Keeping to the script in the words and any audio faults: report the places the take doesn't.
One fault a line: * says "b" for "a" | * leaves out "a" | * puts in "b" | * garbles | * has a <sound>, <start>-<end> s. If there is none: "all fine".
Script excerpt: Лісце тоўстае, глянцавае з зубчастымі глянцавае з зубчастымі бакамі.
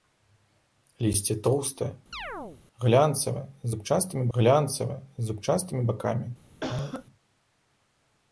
* has a chirp, 2.1-2.6 s
* has a cough, 6.6-7.1 s